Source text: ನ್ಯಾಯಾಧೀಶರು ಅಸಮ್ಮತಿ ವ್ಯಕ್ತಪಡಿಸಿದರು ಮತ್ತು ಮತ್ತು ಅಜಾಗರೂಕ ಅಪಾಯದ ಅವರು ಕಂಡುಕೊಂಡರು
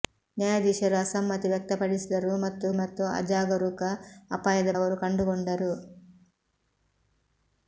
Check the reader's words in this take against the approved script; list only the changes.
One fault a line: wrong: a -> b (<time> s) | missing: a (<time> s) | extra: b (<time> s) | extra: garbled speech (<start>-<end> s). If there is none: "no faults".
no faults